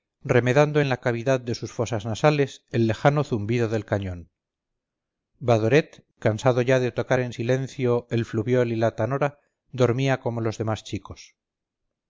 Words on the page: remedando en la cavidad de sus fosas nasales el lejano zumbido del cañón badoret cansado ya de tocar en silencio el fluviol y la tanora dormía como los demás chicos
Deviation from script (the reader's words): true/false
false